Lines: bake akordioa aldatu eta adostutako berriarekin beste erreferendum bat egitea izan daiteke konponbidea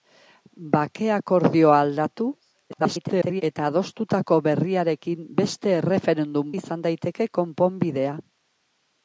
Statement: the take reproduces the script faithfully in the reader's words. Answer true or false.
false